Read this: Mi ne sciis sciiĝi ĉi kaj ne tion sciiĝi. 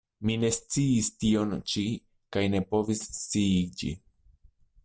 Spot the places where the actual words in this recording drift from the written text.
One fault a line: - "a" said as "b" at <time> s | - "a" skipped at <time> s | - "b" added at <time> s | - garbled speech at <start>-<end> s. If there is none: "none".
- "sciiĝi" said as "tion" at 1.2 s
- "tion" said as "povis" at 2.7 s